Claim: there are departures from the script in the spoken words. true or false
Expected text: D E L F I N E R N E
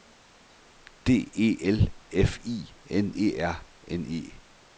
false